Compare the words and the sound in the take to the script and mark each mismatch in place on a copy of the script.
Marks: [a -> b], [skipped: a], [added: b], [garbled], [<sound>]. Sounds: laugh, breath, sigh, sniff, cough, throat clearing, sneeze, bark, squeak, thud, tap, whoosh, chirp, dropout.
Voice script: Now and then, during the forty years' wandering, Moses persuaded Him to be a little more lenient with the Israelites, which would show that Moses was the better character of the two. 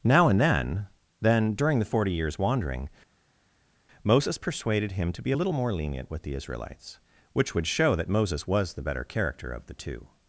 Now and then, [added: then] during the forty years' wandering, Moses persuaded Him to be a little more lenient with the Israelites, which would show that Moses was the better character of the two.